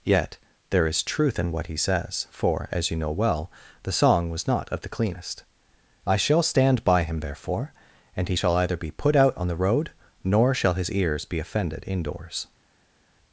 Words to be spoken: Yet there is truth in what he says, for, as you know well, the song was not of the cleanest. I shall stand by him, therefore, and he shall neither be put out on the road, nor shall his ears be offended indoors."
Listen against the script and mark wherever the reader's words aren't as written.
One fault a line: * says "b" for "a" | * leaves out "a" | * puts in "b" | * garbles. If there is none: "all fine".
* says "either" for "neither"